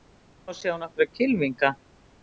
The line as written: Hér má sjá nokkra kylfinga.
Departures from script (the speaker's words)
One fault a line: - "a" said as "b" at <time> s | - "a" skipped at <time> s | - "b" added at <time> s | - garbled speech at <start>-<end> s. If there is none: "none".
none